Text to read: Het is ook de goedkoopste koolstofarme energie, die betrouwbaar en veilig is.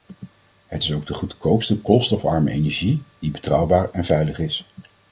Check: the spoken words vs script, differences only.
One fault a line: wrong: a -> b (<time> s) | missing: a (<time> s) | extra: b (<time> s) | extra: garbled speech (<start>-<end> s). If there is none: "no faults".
no faults